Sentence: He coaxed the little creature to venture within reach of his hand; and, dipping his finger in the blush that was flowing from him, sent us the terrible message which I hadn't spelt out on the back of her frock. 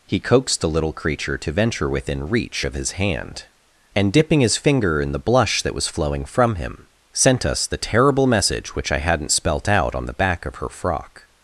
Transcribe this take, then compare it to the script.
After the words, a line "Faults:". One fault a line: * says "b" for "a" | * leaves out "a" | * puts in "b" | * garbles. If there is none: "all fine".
He coaxed the little creature to venture within reach of his hand; and, dipping his finger in the blush that was flowing from him, sent us the terrible message which I hadn't spelt out on the back of her frock.
Faults:
all fine